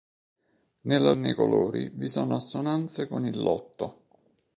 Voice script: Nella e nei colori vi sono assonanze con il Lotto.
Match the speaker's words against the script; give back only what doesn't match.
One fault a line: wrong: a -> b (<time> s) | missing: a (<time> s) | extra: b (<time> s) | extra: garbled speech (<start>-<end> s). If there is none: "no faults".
no faults